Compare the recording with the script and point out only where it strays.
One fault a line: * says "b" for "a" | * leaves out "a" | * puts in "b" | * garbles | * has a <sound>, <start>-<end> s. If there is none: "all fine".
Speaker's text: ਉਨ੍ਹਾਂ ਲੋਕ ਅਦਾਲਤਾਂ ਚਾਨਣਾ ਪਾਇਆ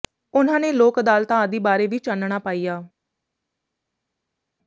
* puts in "ਨੇ"
* puts in "ਆਦਿ ਬਾਰੇ ਵੀ"